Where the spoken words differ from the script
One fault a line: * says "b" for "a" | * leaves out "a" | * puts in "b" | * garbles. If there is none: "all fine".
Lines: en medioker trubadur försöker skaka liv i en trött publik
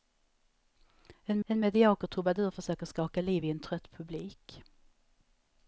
* puts in "en"